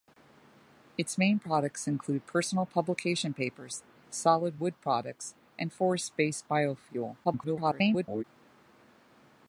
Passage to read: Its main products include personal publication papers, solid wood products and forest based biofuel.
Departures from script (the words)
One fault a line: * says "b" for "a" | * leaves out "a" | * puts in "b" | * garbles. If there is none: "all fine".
* garbles